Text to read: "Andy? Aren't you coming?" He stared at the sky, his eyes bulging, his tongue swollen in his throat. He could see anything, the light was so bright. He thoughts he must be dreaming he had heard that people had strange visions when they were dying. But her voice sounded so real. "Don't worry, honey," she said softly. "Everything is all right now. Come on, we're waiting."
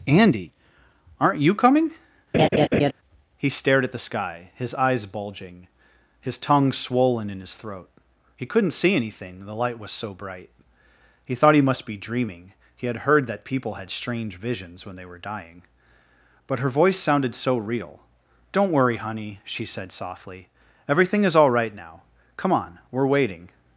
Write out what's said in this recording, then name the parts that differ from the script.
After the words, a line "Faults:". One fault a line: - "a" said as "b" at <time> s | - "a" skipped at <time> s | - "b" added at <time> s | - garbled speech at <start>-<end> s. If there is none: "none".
"Andy? Aren't you coming?" He stared at the sky, his eyes bulging, his tongue swollen in his throat. He couldn't see anything, the light was so bright. He thought he must be dreaming he had heard that people had strange visions when they were dying. But her voice sounded so real. "Don't worry, honey," she said softly. "Everything is all right now. Come on, we're waiting."
Faults:
- "could" said as "couldn't" at 8.5 s
- "thoughts" said as "thought" at 11.3 s